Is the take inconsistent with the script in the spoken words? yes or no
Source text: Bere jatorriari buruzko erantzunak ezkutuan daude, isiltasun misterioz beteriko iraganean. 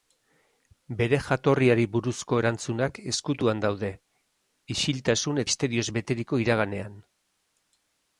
no